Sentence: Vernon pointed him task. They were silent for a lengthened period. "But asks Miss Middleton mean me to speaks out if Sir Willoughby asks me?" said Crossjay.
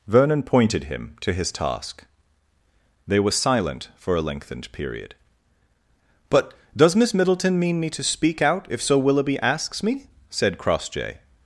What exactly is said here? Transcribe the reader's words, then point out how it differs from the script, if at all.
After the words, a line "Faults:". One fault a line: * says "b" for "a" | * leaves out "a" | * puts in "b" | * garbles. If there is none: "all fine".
Vernon pointed him to his task. They were silent for a lengthened period. "But does Miss Middleton mean me to speak out if Sir Willoughby asks me?" said Crossjay.
Faults:
* puts in "to his"
* says "does" for "asks"
* says "speak" for "speaks"